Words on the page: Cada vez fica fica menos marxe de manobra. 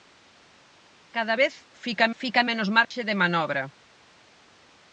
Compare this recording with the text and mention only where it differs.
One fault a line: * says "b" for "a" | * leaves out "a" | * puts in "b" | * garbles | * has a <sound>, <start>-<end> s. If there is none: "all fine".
* has a dropout, 2.8-2.9 s